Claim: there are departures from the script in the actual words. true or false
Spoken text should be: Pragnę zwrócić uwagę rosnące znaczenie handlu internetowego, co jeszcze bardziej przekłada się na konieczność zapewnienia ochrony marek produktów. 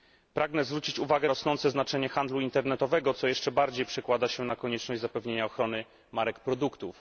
false